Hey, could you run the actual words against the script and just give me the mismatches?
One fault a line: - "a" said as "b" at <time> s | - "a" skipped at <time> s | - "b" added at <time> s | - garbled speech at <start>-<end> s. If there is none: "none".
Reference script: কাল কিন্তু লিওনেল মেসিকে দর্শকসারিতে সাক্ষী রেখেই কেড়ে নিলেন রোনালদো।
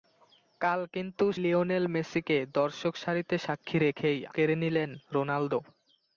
none